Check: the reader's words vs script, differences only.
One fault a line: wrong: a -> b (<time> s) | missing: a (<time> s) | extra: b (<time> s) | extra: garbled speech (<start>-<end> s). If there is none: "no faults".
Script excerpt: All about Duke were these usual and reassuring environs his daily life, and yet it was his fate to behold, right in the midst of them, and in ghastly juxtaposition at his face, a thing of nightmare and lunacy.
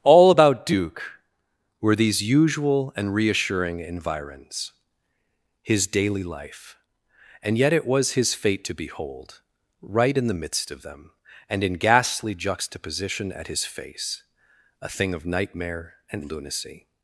no faults